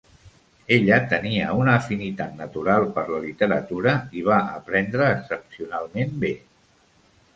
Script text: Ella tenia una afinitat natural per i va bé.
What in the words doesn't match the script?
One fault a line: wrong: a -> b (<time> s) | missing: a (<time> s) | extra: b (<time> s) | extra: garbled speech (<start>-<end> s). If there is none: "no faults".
extra: la literatura (3.1 s)
extra: aprendre excepcionalment (4.6 s)